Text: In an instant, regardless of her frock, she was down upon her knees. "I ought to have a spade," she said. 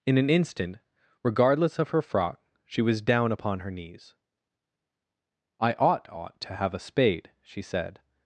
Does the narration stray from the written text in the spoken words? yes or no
yes